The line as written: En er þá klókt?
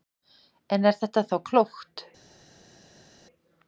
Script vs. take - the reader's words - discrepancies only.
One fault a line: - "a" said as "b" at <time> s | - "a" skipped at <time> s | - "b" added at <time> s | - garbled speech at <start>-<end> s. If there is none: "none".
- "þetta" added at 1.0 s